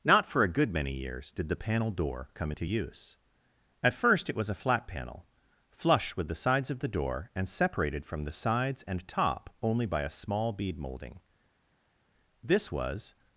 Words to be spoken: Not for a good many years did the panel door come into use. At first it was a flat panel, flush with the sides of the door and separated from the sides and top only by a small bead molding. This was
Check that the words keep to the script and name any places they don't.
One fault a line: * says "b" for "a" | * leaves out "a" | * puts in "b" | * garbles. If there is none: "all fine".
all fine